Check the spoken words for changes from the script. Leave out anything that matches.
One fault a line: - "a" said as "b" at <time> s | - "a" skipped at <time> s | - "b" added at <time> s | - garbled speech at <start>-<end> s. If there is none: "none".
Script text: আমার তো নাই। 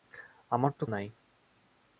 none